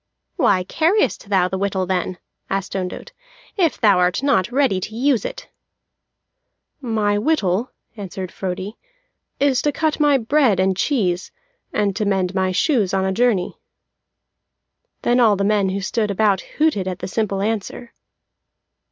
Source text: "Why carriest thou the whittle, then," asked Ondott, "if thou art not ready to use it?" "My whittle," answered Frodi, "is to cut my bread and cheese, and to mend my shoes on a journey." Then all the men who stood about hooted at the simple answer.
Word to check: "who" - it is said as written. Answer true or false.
true